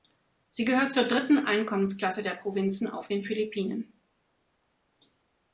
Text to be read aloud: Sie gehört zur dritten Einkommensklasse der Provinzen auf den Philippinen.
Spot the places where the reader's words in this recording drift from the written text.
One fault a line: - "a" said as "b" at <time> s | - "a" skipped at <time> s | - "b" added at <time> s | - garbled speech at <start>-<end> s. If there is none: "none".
none